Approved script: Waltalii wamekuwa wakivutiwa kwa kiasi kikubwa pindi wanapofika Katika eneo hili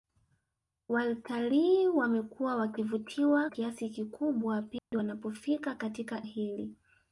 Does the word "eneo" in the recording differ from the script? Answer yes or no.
yes